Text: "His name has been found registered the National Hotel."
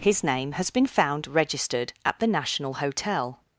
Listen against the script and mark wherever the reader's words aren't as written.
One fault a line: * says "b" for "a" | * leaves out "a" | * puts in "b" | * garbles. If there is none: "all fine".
* puts in "at"